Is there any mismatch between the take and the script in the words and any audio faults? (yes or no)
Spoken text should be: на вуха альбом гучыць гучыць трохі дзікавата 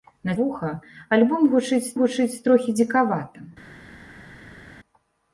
no